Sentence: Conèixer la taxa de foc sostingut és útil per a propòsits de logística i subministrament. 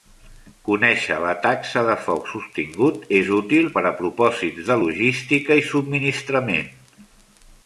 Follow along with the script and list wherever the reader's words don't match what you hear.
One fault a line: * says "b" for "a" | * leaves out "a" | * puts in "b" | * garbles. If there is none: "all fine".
all fine